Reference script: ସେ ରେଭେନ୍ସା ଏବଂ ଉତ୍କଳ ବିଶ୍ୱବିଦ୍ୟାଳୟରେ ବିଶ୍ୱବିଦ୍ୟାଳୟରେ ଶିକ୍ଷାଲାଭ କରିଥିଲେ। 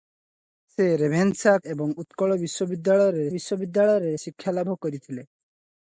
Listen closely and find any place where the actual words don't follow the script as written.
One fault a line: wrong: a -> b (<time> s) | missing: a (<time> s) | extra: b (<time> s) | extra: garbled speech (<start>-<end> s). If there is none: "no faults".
no faults